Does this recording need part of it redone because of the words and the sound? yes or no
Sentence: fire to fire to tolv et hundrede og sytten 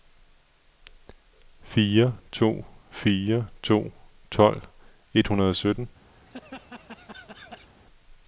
yes